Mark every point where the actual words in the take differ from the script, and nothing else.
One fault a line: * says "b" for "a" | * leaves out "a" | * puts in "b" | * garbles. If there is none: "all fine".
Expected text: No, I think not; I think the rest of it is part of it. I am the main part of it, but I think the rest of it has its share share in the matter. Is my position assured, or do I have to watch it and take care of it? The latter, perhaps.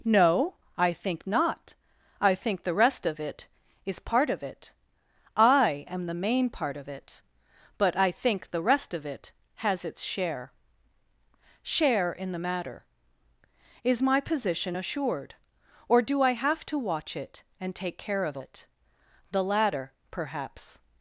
all fine